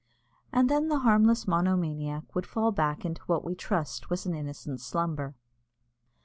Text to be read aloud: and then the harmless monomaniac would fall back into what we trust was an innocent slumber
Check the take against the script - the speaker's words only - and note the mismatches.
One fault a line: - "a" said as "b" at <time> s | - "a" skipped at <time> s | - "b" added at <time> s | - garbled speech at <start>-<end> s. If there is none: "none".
none